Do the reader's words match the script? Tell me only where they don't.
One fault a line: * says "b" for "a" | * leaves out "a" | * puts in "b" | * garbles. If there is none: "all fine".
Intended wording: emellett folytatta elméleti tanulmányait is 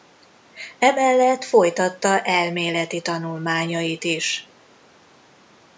all fine